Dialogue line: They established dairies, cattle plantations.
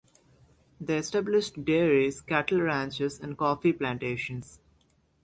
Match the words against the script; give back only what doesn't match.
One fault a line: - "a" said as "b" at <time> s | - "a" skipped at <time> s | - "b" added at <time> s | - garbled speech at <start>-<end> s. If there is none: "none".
- "ranches and coffee" added at 2.6 s